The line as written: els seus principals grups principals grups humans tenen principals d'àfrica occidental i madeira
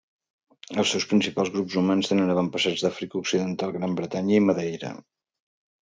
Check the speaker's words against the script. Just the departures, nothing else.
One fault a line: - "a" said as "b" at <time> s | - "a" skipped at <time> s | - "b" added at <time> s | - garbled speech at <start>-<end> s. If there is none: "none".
- "principals grups" skipped at 1.8 s
- "principals" said as "avantpassats" at 2.4 s
- "gran bretanya" added at 3.8 s